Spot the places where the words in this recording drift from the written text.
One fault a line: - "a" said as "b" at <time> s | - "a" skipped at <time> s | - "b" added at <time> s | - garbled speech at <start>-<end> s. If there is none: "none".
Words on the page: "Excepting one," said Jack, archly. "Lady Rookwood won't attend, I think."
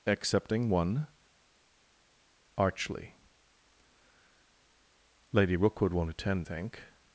- "said Jack" skipped at 1.1 s
- "I" skipped at 6.5 s